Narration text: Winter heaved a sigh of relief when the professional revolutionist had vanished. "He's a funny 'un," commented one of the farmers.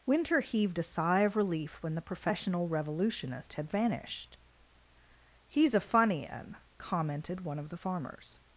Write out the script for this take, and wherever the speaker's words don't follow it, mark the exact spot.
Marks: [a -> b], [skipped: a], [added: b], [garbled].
Winter heaved a sigh of relief when the professional revolutionist had vanished. "He's a funny 'un," commented one of the farmers.